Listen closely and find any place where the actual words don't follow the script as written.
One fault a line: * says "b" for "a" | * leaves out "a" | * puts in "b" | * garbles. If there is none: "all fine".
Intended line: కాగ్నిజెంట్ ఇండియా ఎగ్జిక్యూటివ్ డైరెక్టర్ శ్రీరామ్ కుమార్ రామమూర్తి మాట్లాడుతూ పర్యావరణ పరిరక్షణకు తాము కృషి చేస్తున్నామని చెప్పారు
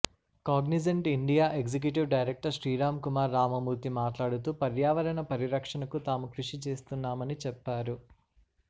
all fine